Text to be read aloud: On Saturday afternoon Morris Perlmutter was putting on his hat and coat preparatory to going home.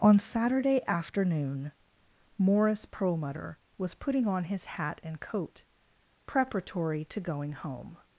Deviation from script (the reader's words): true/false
false